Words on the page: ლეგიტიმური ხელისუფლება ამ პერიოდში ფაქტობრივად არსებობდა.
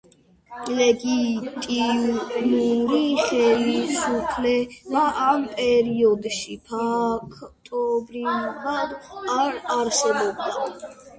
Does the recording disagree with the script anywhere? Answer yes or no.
yes